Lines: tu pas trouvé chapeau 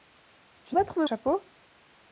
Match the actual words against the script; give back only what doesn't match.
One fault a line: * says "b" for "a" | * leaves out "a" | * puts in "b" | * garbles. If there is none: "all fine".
all fine